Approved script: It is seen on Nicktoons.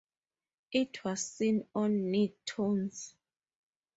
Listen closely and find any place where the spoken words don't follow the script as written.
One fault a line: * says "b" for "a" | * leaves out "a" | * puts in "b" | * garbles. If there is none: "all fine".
* says "was" for "is"